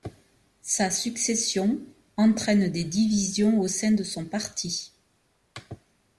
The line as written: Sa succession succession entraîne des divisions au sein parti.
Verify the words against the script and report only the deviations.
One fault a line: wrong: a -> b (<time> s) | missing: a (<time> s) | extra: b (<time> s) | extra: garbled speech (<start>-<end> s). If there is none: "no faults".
missing: succession (1.8 s)
extra: de son (3.9 s)